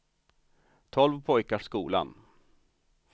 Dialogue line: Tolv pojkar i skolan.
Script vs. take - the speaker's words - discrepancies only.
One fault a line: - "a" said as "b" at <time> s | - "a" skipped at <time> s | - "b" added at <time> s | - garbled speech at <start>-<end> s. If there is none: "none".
none